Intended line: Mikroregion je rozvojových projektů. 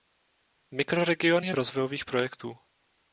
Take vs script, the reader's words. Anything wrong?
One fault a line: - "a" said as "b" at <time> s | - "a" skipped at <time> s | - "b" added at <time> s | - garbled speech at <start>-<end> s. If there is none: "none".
none